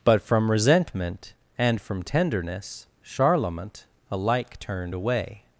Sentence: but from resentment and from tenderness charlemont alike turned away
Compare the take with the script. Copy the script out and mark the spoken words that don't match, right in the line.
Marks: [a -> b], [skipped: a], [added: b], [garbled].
but from resentment and from tenderness charlemont alike turned away